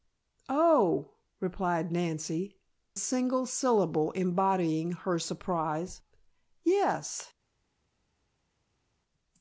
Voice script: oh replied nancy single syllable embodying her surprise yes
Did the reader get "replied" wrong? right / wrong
right